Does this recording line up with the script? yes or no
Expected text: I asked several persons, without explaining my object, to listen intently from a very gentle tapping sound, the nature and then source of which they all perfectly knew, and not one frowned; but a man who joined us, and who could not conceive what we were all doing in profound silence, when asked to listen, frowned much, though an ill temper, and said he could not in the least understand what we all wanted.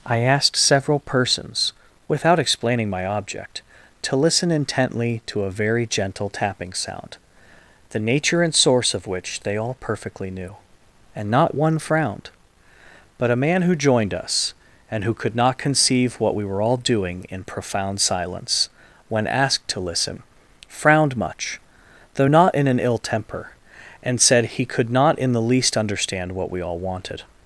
no